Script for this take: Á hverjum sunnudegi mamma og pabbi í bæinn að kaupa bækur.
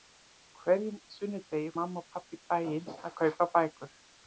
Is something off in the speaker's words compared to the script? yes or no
no